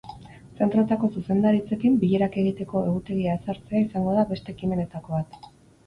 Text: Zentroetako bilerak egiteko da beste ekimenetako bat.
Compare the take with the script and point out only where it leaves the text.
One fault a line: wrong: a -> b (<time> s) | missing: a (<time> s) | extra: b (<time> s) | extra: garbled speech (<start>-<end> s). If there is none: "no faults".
extra: zuzendaritzekin (1.2 s)
extra: egutegia ezartzea izango (2.9 s)